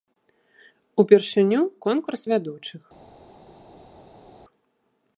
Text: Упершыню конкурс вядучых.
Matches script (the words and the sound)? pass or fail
pass